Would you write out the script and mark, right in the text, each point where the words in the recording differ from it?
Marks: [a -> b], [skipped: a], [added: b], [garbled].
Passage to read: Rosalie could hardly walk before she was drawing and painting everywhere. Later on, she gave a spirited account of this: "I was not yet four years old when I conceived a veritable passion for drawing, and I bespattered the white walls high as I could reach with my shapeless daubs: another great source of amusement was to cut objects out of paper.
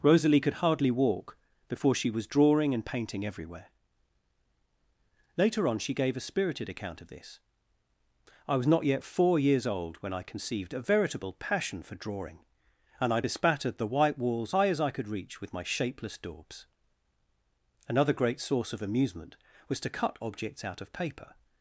Rosalie could hardly walk before she was drawing and painting everywhere. Later on, she gave a spirited account of this: "I was not yet four years old when I conceived a veritable passion for drawing, and I bespattered the white walls high as I could reach with my shapeless daubs: another great source of amusement was to cut objects out of paper.